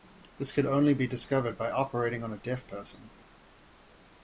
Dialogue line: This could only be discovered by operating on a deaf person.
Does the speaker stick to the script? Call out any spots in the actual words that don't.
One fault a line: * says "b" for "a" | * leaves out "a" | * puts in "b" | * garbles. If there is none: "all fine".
all fine